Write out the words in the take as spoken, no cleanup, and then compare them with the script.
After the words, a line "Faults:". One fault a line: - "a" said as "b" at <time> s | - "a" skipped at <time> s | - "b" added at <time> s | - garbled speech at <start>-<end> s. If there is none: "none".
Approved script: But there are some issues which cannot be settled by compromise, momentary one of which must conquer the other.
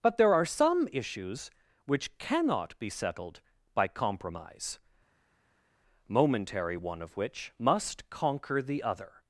But there are some issues which cannot be settled by compromise, momentary one of which must conquer the other.
Faults:
none